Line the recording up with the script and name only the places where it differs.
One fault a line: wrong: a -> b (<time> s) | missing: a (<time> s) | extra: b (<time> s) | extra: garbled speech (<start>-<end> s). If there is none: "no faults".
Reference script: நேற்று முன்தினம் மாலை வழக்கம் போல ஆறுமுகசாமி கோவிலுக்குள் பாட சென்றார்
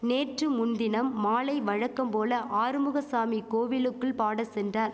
no faults